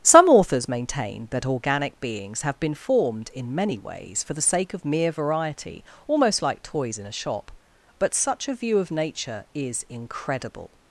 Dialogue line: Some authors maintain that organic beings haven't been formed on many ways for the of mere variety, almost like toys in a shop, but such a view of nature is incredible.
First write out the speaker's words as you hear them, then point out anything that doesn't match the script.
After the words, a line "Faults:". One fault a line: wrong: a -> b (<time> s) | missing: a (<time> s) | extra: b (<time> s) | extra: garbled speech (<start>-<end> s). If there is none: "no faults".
Some authors maintain that organic beings have been formed in many ways for the sake of mere variety, almost like toys in a shop, but such a view of nature is incredible.
Faults:
wrong: haven't -> have (2.4 s)
wrong: on -> in (3.4 s)
extra: sake (4.4 s)